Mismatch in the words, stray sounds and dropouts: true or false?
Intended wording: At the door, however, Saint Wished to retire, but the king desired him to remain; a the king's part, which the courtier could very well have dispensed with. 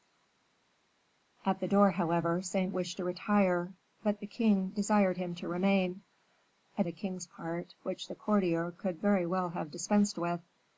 false